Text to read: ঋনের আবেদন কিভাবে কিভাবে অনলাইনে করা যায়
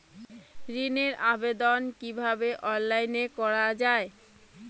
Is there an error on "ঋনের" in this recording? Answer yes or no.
no